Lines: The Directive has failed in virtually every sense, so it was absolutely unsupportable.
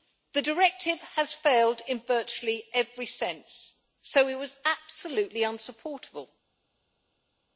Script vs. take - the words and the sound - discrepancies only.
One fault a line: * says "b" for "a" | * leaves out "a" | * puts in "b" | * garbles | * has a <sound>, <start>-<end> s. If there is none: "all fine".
all fine